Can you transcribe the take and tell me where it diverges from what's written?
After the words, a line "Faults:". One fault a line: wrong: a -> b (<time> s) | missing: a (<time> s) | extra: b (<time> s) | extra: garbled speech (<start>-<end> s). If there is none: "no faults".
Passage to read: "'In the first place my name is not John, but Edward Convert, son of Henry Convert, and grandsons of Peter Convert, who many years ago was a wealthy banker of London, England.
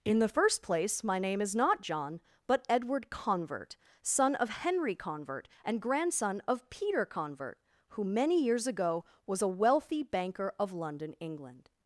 "'In the first place my name is not John, but Edward Convert, son of Henry Convert, and grandson of Peter Convert, who many years ago was a wealthy banker of London, England.
Faults:
wrong: grandsons -> grandson (5.8 s)